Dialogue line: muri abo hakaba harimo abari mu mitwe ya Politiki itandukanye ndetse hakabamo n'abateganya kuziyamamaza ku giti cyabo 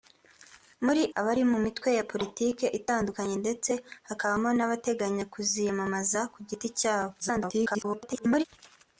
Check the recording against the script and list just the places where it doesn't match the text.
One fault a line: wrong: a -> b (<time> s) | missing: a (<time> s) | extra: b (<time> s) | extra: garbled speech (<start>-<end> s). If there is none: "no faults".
missing: abo hakaba harimo (1.0 s)
extra: garbled speech (7.2-8.4 s)